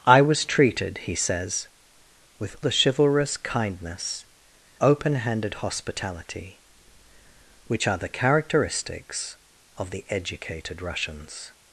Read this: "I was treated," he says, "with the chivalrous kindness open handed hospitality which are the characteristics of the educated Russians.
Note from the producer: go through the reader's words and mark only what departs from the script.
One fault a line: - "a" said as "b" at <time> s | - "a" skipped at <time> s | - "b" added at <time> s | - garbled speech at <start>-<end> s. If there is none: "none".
none